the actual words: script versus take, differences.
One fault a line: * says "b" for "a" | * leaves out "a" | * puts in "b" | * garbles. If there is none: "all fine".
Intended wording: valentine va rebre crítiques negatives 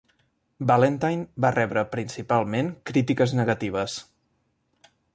* puts in "principalment"